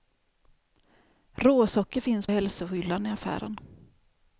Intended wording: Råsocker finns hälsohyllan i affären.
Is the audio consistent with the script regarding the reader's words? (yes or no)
yes